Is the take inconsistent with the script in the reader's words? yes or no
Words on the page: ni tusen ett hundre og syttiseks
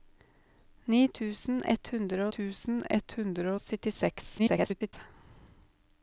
yes